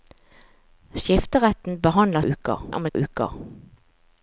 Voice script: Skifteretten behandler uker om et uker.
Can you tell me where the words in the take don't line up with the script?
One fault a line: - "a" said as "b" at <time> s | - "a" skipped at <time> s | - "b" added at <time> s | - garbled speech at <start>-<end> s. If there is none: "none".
none